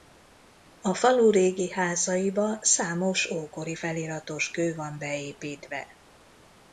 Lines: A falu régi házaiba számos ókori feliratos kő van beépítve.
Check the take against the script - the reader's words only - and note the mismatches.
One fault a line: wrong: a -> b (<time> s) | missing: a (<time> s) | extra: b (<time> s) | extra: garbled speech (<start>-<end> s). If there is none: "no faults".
no faults